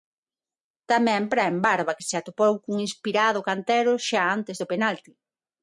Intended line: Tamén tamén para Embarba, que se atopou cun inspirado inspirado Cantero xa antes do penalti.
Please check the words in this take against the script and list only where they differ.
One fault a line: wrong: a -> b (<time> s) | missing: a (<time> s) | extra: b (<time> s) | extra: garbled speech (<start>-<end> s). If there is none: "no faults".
missing: tamén (1.2 s)
missing: inspirado (3.4 s)